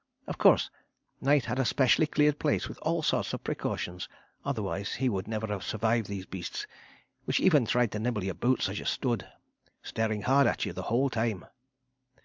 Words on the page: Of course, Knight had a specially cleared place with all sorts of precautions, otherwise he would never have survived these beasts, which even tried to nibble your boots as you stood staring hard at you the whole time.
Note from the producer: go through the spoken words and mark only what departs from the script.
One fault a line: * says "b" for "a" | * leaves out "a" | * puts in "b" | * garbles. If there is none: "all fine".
all fine